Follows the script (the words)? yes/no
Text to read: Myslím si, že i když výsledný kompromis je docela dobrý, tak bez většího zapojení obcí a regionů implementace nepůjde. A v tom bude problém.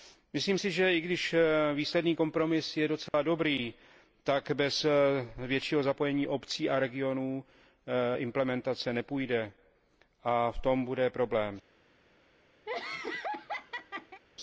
yes